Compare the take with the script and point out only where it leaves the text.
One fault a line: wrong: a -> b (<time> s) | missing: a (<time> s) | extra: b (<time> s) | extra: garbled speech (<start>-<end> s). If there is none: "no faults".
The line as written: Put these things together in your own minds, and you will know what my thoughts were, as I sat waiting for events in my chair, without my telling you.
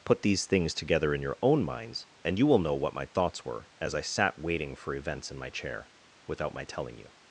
no faults